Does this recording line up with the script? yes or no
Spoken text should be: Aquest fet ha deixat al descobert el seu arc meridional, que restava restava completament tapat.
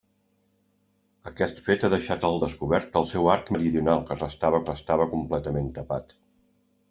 yes